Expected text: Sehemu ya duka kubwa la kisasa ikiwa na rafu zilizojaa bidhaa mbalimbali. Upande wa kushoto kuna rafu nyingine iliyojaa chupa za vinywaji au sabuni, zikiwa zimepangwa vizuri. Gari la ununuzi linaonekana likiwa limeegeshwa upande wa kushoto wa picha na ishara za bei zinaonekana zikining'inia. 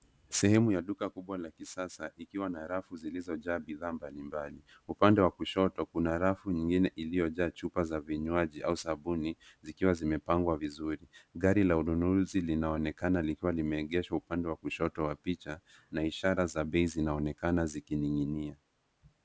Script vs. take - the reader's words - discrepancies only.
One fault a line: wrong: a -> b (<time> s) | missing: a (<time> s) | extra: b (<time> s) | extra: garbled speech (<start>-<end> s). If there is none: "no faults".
no faults